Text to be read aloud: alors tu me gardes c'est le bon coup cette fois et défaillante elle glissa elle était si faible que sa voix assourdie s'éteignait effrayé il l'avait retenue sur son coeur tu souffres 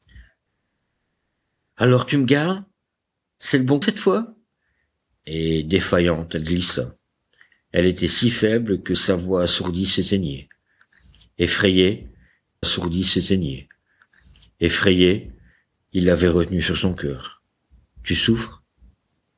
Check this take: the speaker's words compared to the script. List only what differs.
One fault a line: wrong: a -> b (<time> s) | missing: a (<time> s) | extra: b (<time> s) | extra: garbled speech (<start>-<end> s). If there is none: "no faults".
missing: coup (3.8 s)
extra: assourdie s'éteignait effrayé (12.6 s)